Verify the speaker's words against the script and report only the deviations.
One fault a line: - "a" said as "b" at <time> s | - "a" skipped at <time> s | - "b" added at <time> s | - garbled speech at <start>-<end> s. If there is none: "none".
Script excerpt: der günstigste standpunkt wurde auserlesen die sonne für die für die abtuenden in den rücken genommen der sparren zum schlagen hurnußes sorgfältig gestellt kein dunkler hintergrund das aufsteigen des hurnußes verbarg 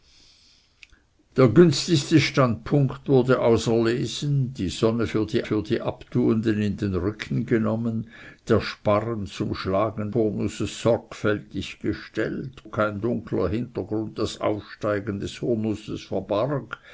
none